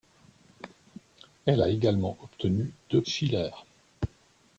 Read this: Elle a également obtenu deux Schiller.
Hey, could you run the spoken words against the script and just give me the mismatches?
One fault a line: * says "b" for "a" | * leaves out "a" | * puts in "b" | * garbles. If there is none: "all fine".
all fine